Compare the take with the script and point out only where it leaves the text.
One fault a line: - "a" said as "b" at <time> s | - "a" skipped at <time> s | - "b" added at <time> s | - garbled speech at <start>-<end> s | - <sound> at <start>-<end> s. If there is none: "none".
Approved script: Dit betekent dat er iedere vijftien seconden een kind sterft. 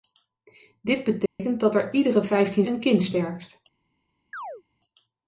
- dropout at 1.3-1.4 s
- "seconden" skipped at 2.7 s
- chirp at 4.3-4.6 s